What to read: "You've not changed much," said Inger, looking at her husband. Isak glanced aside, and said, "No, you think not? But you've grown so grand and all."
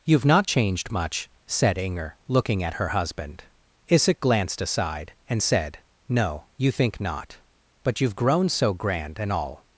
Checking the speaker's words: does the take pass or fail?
pass